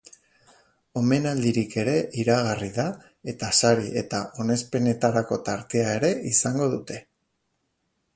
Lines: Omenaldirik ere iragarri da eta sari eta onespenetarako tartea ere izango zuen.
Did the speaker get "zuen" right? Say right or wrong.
wrong